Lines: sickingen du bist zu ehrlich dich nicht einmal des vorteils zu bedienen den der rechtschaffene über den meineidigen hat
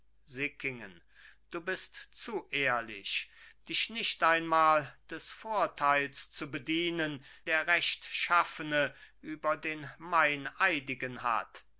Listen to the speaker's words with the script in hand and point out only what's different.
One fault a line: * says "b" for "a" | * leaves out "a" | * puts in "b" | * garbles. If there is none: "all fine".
* leaves out "den"